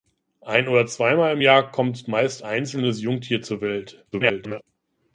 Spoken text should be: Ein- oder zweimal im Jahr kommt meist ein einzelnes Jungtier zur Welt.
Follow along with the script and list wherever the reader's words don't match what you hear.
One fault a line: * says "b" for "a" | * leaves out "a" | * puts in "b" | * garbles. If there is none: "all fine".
* leaves out "ein"
* garbles